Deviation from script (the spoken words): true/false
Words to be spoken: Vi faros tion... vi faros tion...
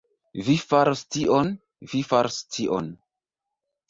false